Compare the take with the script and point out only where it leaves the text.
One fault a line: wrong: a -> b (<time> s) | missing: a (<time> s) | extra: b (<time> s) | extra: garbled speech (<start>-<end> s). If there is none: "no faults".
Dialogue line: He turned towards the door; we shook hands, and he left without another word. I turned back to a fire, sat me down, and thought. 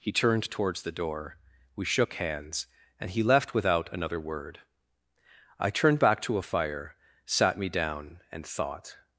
no faults